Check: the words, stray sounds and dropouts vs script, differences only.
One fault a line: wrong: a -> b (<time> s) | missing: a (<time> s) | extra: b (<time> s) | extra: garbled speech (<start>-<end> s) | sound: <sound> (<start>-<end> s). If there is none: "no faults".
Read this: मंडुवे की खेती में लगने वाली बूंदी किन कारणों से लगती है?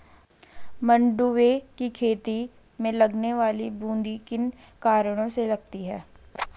no faults